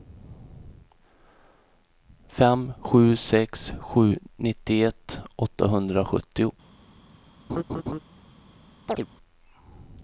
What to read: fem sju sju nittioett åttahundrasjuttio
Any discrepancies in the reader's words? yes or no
yes